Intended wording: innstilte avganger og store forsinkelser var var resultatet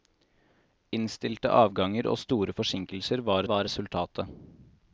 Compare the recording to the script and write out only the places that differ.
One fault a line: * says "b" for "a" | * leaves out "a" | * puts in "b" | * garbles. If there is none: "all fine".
all fine